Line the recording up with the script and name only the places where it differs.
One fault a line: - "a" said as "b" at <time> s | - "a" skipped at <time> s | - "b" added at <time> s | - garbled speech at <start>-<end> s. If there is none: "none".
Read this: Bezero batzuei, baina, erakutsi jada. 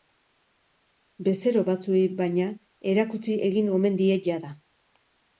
- "egin omen die" added at 3.5 s